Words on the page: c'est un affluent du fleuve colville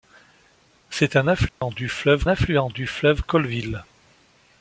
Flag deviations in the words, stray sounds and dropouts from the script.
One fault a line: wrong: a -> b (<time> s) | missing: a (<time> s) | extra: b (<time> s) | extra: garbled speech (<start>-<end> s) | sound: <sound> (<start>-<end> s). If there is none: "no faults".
sound: dropout (1.5-1.6 s)
extra: affluent du fleuve (2.3 s)